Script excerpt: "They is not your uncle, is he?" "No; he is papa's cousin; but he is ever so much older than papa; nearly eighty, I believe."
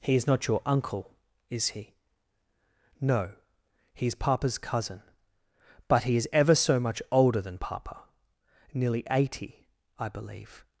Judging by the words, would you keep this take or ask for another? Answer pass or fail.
fail